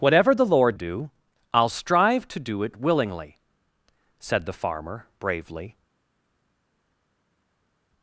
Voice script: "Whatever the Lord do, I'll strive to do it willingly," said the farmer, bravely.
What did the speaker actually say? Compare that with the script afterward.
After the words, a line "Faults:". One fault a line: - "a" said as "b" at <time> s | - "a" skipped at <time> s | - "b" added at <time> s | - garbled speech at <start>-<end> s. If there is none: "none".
"Whatever the Lord do, I'll strive to do it willingly," said the farmer, bravely.
Faults:
none